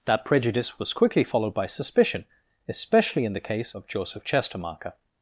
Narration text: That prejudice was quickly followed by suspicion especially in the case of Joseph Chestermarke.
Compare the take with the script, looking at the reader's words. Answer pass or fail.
pass